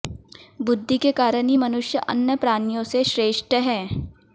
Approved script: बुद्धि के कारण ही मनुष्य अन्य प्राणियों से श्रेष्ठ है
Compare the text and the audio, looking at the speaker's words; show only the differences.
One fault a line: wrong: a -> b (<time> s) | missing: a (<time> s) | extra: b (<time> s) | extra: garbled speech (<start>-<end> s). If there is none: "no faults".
no faults